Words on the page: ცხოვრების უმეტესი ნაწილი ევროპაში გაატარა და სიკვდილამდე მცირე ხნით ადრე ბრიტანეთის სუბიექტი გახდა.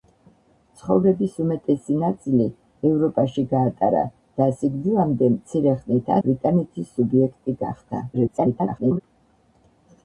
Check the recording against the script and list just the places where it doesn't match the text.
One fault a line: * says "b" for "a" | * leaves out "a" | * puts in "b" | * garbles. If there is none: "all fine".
* leaves out "ადრე"
* garbles